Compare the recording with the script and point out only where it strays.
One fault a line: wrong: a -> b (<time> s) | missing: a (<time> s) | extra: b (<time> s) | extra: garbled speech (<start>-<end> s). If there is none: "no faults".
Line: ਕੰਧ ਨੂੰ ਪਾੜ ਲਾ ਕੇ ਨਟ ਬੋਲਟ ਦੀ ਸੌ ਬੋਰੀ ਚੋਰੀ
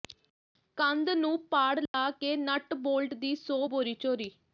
no faults